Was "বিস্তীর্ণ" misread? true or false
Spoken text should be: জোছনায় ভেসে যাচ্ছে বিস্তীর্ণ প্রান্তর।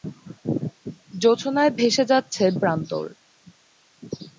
true